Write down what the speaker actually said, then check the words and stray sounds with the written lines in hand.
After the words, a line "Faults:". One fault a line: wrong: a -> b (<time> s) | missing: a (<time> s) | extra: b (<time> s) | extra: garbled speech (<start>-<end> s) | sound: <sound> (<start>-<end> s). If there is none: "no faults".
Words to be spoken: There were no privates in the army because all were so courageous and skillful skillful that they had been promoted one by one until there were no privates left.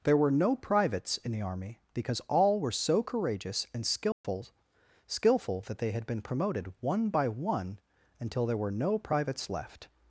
There were no privates in the army because all were so courageous and skillful skillful that they had been promoted one by one until there were no privates left.
Faults:
sound: dropout (4.1-4.2 s)